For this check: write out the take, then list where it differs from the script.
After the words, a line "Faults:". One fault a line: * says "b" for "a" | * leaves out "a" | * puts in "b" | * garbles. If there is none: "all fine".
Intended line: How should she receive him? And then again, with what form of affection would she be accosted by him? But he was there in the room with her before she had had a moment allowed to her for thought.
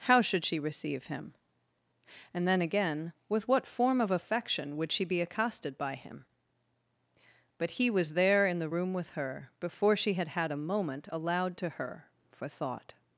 How should she receive him? And then again, with what form of affection would she be accosted by him? But he was there in the room with her before she had had a moment allowed to her for thought.
Faults:
all fine